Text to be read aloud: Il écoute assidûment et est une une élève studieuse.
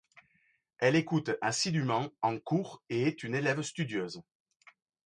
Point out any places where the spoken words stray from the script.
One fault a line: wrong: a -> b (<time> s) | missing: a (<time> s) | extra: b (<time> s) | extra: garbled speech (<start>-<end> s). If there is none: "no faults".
wrong: Il -> Elle (0.8 s)
extra: en cours (2.2 s)
missing: une (3.4 s)